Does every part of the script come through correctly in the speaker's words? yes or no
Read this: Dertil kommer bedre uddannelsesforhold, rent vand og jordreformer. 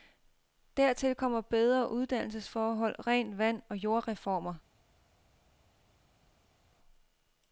yes